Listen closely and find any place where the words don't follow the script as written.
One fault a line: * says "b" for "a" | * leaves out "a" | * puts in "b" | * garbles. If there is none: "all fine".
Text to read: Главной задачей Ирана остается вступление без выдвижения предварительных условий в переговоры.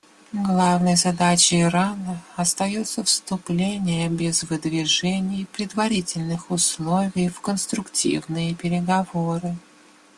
* puts in "конструктивные"